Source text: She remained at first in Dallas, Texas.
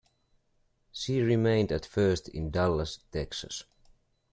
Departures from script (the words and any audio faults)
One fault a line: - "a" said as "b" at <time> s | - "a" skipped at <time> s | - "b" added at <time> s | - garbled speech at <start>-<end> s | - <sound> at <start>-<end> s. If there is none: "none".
none